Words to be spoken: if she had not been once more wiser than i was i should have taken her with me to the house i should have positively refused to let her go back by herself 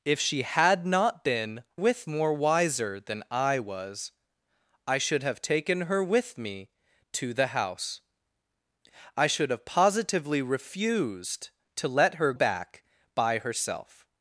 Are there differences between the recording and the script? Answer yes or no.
yes